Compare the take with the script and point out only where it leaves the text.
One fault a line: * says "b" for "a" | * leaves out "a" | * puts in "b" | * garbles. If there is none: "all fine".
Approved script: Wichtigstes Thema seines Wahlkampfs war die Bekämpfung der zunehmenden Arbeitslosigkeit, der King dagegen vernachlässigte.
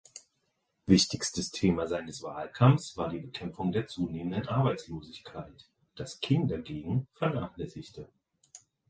* says "das" for "der"